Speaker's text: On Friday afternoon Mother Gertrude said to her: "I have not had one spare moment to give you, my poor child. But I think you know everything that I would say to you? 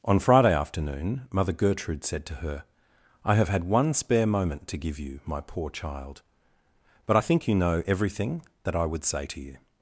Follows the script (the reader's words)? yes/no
no